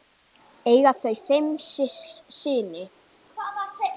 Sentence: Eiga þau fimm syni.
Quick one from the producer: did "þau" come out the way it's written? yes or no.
yes